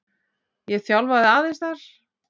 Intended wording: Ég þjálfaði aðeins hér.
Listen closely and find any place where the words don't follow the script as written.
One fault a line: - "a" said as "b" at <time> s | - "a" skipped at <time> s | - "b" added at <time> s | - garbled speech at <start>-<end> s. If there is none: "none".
- "hér" said as "þar" at 1.6 s